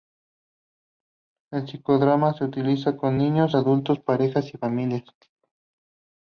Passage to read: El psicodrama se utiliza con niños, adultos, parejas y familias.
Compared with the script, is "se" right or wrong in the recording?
right